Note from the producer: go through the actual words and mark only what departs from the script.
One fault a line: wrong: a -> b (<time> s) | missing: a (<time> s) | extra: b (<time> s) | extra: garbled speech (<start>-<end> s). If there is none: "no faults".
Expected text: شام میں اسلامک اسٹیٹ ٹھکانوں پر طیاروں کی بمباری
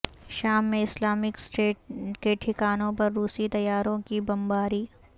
extra: کے (2.2 s)
extra: روسی (3.1 s)